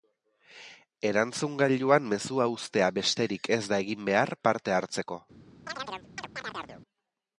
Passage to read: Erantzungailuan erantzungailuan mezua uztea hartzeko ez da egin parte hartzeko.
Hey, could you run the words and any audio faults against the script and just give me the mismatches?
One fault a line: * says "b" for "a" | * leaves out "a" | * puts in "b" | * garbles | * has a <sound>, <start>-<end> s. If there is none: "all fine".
* leaves out "erantzungailuan"
* says "besterik" for "hartzeko"
* puts in "behar"
* has a chirp, 5.7-6.8 s